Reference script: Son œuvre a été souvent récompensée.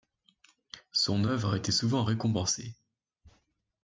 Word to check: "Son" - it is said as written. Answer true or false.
true